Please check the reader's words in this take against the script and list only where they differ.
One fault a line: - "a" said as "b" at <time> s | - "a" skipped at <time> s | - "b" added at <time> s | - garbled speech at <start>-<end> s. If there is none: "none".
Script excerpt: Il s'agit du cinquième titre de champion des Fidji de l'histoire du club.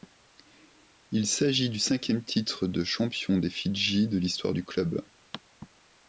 none